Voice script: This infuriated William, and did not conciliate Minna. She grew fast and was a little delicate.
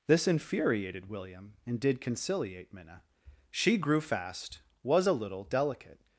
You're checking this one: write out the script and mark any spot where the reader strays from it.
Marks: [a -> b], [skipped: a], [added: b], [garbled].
This infuriated William, and did [skipped: not] conciliate Minna. She grew fast [skipped: and] was a little delicate.